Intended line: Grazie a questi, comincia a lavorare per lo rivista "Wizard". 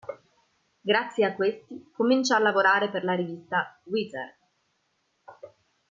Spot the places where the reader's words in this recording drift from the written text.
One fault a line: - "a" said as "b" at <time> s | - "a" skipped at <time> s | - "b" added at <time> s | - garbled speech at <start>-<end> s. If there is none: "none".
- "lo" said as "la" at 3.0 s